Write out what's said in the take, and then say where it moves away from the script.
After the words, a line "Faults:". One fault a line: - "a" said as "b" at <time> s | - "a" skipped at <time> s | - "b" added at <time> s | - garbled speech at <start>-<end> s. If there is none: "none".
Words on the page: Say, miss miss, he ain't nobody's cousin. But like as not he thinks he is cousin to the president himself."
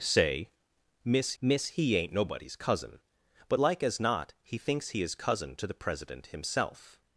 Say, miss miss, he ain't nobody's cousin. But like as not he thinks he is cousin to the president himself."
Faults:
none